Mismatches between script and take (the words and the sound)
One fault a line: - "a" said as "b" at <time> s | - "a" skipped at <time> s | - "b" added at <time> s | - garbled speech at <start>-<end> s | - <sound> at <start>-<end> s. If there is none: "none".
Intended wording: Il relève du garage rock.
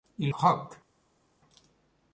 - "relève du garage" skipped at 0.3 s